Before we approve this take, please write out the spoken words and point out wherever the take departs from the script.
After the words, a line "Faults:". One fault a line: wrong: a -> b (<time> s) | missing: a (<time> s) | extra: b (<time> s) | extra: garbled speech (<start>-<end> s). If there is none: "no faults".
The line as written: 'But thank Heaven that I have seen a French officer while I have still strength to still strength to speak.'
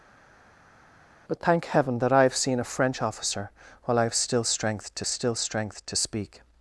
'But thank Heaven that I have seen a French officer while I have still strength to still strength to speak.'
Faults:
no faults